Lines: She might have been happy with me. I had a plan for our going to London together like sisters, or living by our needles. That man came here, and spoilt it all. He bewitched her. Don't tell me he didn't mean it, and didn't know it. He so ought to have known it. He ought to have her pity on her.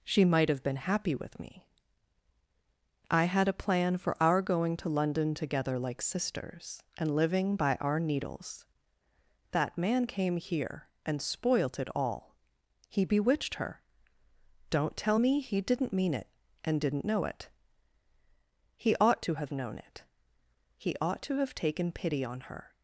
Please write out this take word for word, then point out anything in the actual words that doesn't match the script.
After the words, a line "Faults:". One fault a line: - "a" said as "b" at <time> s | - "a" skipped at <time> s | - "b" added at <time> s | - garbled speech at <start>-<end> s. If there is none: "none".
She might have been happy with me. I had a plan for our going to London together like sisters, and living by our needles. That man came here, and spoilt it all. He bewitched her. Don't tell me he didn't mean it, and didn't know it. He ought to have known it. He ought to have taken pity on her.
Faults:
- "or" said as "and" at 7.0 s
- "so" skipped at 18.9 s
- "her" said as "taken" at 21.5 s